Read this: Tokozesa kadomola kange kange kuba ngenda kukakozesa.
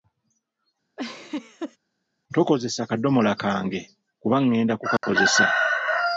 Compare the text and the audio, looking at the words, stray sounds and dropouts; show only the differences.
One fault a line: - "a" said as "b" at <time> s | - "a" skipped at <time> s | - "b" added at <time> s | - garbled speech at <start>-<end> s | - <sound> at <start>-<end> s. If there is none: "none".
- laugh at 1.0-1.8 s
- "kange" skipped at 3.8 s
- dropout at 5.0-5.0 s